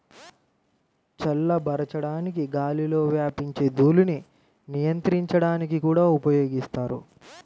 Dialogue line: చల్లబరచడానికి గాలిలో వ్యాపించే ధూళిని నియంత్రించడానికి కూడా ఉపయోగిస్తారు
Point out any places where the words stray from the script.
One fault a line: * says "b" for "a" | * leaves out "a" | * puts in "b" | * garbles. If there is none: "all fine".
all fine